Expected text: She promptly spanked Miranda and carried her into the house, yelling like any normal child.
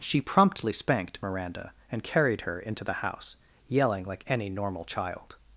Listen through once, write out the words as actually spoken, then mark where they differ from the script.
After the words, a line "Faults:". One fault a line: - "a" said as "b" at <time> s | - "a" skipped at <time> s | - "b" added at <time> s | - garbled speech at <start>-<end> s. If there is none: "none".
She promptly spanked Miranda and carried her into the house, yelling like any normal child.
Faults:
none